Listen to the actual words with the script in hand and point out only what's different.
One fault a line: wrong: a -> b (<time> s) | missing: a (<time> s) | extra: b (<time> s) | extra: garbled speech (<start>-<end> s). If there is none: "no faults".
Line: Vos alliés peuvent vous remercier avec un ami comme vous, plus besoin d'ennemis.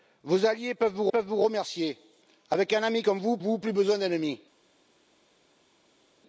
extra: peuvent vous (1.1 s)
extra: vous (3.4 s)